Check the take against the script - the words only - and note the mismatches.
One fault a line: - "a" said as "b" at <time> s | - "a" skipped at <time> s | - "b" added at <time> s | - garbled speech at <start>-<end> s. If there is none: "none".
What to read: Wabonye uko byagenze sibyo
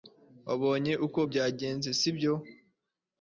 none